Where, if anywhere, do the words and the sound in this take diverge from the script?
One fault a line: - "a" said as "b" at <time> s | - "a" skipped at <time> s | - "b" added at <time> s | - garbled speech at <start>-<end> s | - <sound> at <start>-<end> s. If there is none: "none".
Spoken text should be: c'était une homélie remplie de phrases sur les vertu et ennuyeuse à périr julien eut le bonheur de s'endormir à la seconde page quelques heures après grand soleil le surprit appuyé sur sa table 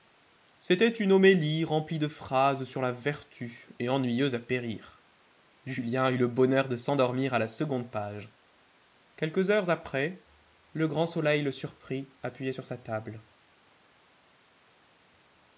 - "les" said as "la" at 2.8 s
- "le" added at 10.7 s